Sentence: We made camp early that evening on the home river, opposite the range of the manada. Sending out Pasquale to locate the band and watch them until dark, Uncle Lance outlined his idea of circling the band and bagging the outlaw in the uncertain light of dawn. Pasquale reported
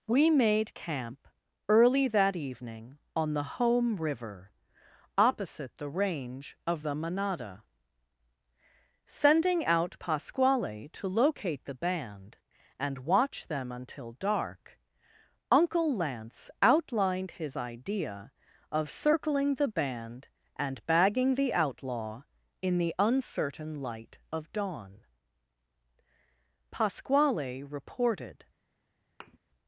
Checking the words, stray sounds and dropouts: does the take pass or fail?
fail